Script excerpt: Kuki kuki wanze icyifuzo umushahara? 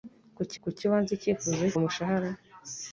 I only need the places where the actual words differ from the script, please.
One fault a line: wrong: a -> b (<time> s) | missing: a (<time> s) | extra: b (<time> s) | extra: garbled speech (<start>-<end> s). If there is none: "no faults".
no faults